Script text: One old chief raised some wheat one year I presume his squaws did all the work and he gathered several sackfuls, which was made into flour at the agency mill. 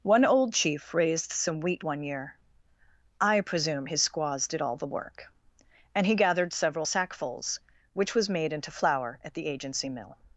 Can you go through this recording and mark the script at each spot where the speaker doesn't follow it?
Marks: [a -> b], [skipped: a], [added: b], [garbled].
One old chief raised some wheat one year I presume his squaws did all the work and he gathered several sackfuls, which was made into flour at the agency mill.